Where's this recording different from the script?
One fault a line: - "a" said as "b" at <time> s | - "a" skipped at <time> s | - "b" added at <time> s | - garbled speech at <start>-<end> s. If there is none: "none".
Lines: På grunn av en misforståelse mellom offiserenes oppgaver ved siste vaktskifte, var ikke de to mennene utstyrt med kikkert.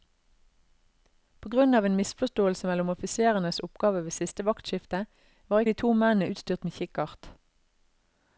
- "ikke" skipped at 5.7 s